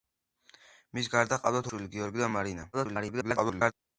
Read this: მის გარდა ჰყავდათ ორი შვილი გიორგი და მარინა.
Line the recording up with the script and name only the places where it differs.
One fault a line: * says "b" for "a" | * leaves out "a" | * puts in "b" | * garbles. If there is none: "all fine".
* leaves out "ორი"
* garbles